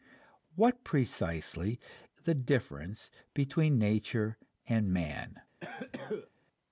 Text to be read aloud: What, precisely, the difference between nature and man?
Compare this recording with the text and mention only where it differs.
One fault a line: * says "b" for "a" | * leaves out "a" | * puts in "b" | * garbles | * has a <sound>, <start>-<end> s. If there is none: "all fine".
* has a cough, 5.6-6.3 s